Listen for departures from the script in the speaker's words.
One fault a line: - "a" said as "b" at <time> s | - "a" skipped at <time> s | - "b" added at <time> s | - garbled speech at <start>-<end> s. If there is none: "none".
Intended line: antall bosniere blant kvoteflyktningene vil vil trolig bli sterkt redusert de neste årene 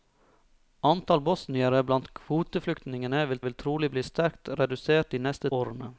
none